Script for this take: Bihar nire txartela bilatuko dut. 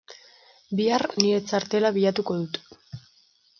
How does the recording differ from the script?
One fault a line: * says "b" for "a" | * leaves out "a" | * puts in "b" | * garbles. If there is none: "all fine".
all fine